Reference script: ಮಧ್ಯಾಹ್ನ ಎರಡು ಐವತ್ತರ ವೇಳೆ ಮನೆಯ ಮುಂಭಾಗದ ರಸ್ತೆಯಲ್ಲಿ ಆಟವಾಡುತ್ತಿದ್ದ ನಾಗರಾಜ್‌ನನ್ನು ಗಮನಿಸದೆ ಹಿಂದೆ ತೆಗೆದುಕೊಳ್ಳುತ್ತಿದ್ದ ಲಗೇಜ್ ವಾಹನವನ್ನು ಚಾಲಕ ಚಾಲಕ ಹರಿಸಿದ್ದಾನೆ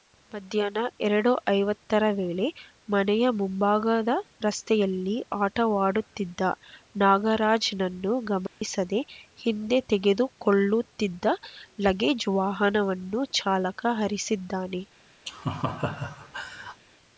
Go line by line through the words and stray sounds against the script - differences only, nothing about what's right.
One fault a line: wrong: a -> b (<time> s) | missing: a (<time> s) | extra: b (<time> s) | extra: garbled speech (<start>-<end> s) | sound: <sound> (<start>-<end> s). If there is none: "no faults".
sound: dropout (8.5-8.6 s)
missing: ಚಾಲಕ (13.9 s)
sound: laugh (15.3-16.8 s)